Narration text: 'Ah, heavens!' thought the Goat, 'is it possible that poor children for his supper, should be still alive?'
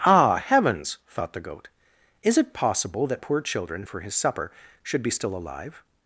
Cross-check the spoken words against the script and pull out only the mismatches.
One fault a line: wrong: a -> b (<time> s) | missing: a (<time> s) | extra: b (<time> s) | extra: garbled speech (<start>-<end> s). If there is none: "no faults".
no faults